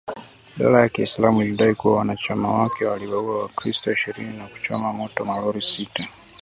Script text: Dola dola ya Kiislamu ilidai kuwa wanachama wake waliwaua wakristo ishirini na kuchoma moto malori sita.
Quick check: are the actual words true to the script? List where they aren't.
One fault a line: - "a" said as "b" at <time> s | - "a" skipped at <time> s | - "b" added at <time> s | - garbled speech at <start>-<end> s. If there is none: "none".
- "dola" skipped at 0.8 s